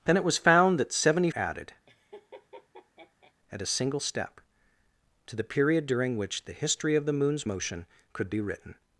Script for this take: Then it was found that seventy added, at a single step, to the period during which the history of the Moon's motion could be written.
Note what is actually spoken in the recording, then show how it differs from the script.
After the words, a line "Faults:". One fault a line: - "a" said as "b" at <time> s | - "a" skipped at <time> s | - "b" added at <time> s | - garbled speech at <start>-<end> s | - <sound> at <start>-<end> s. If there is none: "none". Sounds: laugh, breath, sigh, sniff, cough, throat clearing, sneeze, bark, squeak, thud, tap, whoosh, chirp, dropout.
Then it was found that seventy added, at a single step, to the period during which the history of the Moon's motion could be written.
Faults:
- laugh at 1.9-3.3 s